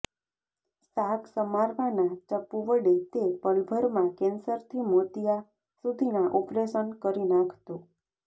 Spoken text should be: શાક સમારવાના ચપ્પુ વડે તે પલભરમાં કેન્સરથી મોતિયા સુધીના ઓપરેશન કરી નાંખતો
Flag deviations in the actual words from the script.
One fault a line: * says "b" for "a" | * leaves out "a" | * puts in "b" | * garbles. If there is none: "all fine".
all fine